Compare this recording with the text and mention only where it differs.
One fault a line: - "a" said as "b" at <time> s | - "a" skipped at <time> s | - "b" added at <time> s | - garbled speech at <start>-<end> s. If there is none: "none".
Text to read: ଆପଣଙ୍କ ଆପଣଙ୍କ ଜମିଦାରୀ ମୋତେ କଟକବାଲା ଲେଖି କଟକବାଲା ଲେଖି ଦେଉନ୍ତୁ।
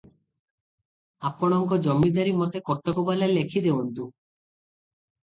- "ଆପଣଙ୍କ" skipped at 1.8 s
- "କଟକବାଲା ଲେଖି" skipped at 3.6 s